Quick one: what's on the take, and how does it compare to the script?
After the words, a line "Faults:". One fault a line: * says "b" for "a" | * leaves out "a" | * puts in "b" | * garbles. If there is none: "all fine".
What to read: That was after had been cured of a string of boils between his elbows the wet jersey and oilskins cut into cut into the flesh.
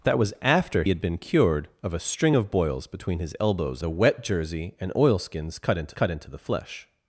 That was after had been cured of a string of boils between his elbows the wet jersey and oilskins cut into cut into the flesh.
Faults:
all fine